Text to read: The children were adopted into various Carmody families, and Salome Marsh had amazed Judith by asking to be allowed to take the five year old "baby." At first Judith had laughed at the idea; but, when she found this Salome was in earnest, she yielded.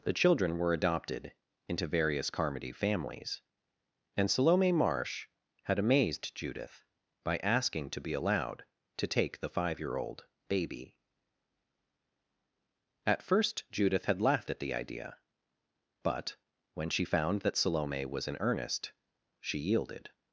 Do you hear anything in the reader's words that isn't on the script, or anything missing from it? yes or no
yes